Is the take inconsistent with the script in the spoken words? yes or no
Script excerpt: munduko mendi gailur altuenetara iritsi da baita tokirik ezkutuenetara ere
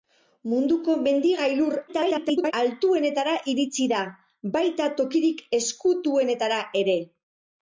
yes